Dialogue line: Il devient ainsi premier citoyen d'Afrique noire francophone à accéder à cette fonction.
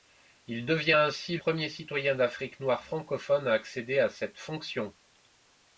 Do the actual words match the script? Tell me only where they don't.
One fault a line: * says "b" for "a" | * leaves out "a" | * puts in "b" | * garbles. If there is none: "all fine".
all fine